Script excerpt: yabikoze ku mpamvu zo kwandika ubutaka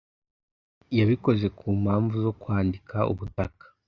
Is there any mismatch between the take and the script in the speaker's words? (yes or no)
no